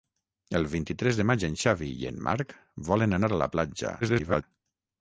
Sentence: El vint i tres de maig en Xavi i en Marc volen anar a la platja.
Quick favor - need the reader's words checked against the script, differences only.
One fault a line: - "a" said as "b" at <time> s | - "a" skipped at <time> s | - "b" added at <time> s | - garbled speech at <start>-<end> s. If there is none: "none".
- garbled speech at 4.0-4.4 s